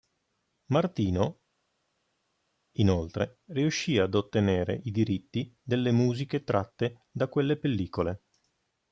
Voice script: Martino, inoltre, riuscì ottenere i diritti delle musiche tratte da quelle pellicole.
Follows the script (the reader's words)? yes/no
no